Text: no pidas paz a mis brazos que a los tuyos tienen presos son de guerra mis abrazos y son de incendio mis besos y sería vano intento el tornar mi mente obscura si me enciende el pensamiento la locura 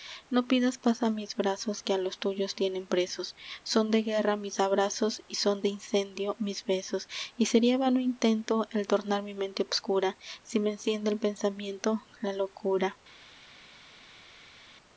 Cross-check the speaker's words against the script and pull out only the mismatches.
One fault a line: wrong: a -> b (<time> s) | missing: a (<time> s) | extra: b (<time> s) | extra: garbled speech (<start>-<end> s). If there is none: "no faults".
no faults